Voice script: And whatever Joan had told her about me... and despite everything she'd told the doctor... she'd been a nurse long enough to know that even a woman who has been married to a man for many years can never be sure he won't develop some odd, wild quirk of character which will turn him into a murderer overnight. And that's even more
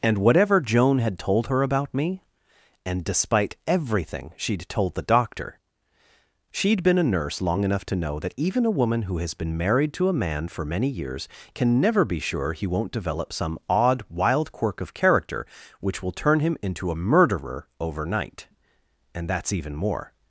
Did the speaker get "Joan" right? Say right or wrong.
right